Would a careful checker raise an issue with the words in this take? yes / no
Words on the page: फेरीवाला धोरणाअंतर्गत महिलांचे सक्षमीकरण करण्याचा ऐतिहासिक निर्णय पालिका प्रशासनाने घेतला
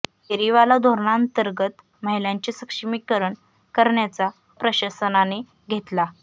yes